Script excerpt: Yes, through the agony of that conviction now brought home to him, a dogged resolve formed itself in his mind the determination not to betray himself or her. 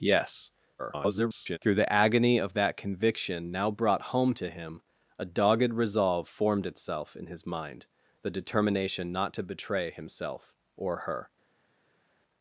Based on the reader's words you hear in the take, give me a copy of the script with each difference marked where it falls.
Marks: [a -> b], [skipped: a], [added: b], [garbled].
Yes, [garbled] through the agony of that conviction now brought home to him, a dogged resolve formed itself in his mind the determination not to betray himself or her.